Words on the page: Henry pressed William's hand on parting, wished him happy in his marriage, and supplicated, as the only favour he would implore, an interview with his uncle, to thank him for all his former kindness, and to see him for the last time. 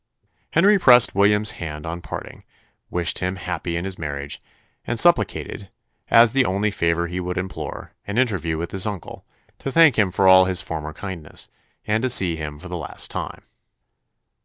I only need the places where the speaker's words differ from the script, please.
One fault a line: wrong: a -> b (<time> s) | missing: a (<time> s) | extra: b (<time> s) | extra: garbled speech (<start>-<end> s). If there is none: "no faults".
no faults